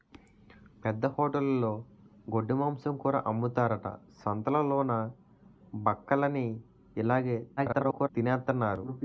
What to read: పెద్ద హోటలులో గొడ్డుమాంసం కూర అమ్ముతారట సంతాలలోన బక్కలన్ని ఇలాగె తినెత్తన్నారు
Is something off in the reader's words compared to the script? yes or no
yes